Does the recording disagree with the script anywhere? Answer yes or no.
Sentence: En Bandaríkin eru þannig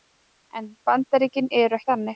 no